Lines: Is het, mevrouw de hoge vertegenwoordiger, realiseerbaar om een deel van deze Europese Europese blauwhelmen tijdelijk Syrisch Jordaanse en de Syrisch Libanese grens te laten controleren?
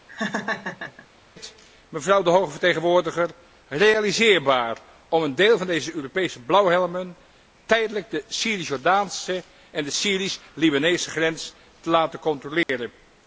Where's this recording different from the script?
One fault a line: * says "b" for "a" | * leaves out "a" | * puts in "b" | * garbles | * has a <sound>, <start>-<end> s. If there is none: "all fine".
* has a laugh, 0.1-1.1 s
* leaves out "Europese"
* puts in "de"
* has a dropout, 12.6-12.7 s